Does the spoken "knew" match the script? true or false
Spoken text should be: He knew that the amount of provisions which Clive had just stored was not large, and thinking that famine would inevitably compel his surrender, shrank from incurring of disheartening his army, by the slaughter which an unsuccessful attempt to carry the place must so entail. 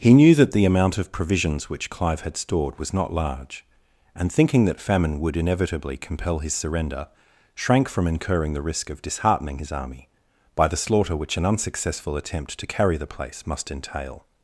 true